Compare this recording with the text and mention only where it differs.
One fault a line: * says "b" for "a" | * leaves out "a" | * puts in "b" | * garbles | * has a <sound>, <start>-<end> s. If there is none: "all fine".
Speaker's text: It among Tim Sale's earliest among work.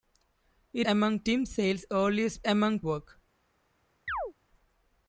* has a chirp, 4.1-4.3 s